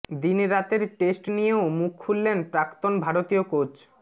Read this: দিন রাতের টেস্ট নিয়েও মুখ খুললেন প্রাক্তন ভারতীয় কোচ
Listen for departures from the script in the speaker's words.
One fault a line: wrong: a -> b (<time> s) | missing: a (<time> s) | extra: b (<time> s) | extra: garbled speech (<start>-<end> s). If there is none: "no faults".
no faults